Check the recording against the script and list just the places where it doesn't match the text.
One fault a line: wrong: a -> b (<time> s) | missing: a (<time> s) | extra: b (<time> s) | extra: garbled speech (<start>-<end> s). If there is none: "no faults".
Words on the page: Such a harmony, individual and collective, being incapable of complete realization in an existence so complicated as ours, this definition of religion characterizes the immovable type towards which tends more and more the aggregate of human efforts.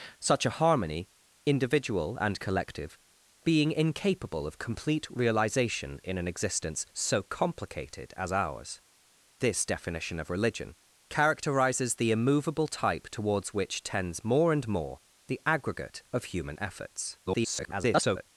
extra: garbled speech (17.3-18.3 s)